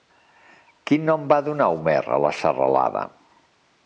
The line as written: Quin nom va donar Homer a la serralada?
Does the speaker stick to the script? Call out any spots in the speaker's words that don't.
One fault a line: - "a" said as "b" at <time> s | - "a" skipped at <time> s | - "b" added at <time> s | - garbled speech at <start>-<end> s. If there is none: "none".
none